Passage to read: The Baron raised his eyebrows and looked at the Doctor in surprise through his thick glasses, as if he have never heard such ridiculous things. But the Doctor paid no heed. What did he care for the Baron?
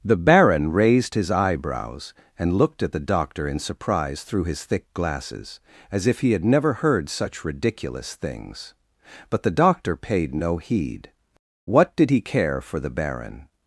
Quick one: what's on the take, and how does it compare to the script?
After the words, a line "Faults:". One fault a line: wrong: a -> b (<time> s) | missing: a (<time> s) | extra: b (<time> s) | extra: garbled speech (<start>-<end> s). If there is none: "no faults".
The Baron raised his eyebrows and looked at the Doctor in surprise through his thick glasses, as if he had never heard such ridiculous things. But the Doctor paid no heed. What did he care for the Baron?
Faults:
wrong: have -> had (6.3 s)